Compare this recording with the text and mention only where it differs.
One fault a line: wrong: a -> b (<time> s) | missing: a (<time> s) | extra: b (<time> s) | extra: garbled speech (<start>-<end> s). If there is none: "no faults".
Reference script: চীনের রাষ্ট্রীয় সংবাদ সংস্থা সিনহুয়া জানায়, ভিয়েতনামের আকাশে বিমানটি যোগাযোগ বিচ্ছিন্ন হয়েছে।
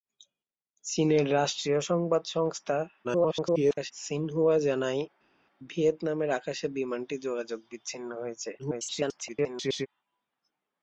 extra: garbled speech (3.0-3.9 s)
extra: garbled speech (8.6-9.9 s)